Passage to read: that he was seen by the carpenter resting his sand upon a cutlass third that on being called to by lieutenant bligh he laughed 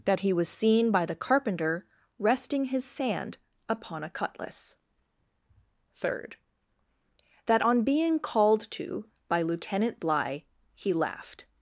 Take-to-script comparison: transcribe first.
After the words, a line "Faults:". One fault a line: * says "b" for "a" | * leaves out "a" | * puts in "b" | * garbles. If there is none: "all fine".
that he was seen by the carpenter resting his sand upon a cutlass third that on being called to by lieutenant bligh he laughed
Faults:
all fine